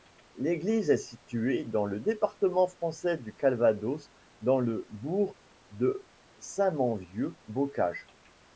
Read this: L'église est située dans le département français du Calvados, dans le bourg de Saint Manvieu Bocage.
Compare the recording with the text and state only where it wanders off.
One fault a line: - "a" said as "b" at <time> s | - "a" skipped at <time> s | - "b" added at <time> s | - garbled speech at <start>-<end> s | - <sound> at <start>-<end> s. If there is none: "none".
none